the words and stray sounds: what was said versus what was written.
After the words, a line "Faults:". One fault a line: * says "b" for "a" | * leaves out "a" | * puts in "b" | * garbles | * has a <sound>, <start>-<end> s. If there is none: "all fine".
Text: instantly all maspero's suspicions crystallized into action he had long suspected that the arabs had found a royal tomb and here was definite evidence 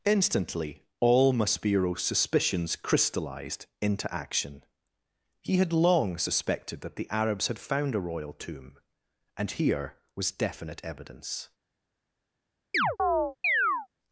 instantly all maspero's suspicions crystallized into action he had long suspected that the arabs had found a royal tomb and here was definite evidence
Faults:
* has a chirp, 12.7-13.9 s